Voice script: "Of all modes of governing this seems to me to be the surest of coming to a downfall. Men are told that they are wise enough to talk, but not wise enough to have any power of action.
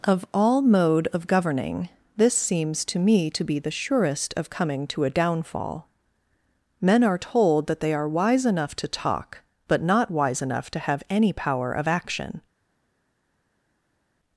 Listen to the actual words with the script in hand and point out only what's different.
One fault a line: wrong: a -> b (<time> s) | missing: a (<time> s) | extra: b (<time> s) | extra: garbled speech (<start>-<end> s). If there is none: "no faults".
wrong: modes -> mode (0.6 s)